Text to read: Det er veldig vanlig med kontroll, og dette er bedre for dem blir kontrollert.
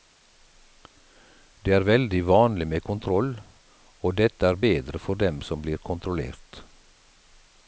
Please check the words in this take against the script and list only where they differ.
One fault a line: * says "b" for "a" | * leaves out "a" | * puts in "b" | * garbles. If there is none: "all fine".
* puts in "som"